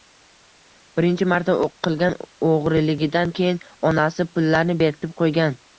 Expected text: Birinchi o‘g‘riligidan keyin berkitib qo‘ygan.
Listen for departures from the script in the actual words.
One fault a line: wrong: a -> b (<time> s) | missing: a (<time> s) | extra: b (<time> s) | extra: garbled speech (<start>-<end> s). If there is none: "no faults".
extra: marta qilgan (1.3 s)
extra: onasi pullarni (3.9 s)